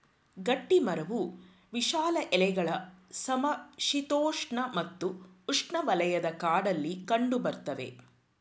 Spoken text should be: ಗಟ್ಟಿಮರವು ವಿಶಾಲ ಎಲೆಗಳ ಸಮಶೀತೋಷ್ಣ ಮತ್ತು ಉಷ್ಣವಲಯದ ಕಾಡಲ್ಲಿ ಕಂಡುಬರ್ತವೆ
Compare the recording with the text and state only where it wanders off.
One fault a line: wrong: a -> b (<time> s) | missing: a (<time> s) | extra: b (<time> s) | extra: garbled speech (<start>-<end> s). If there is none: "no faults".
no faults